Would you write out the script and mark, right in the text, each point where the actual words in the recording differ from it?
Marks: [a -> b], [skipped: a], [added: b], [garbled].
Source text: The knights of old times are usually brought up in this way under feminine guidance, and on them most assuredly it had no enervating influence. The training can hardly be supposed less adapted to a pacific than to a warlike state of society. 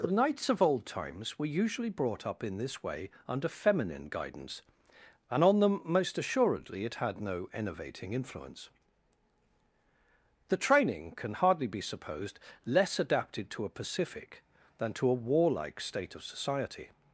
The knights of old times [are -> were] usually brought up in this way under feminine guidance, and on them most assuredly it had no enervating influence. The training can hardly be supposed less adapted to a pacific than to a warlike state of society.